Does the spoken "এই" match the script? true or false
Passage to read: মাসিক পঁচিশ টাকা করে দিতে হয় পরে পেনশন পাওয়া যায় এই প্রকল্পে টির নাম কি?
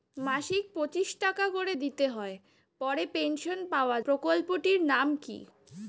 false